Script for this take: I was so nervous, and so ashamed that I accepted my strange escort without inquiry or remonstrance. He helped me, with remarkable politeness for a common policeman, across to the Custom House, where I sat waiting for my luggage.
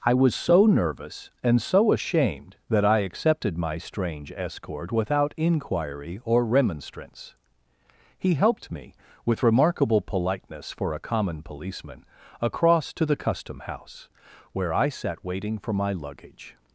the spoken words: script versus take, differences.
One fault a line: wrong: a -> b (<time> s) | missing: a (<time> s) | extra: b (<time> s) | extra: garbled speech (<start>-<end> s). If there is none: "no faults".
no faults